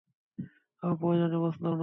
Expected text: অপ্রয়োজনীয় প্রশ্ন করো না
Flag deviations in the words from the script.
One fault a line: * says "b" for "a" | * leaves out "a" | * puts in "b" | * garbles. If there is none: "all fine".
* leaves out "করো"